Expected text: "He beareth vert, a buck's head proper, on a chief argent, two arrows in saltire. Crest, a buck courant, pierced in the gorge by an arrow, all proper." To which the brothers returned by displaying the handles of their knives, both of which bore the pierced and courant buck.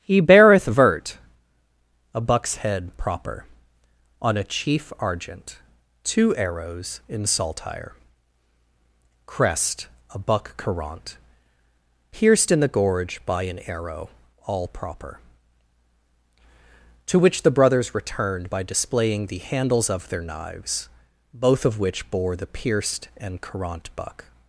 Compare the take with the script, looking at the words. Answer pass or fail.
pass